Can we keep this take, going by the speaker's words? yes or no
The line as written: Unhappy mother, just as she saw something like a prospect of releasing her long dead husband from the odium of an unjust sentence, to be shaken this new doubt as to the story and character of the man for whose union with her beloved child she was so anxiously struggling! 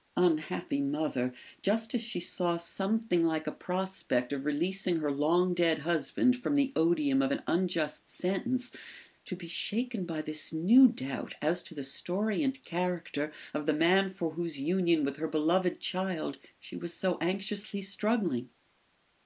no